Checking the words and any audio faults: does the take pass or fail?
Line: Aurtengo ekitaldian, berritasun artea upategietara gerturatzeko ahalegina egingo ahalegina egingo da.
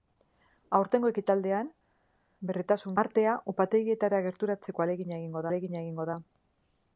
pass